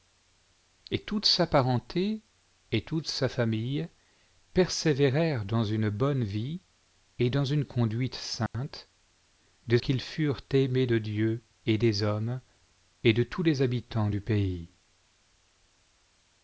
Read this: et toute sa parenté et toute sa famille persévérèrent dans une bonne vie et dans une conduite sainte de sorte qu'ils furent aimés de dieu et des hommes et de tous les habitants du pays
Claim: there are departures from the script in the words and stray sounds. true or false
true